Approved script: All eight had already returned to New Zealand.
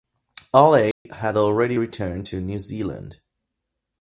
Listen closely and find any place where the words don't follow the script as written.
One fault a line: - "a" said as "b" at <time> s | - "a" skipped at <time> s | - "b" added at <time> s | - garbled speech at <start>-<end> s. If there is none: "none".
none